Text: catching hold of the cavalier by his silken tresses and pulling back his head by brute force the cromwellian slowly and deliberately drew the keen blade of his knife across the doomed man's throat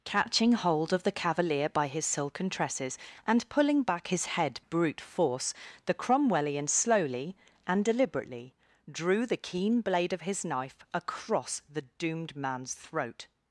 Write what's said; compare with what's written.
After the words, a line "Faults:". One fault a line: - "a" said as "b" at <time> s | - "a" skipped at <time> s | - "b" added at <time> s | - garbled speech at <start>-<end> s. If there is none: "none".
catching hold of the cavalier by his silken tresses and pulling back his head brute force the cromwellian slowly and deliberately drew the keen blade of his knife across the doomed man's throat
Faults:
- "by" skipped at 4.6 s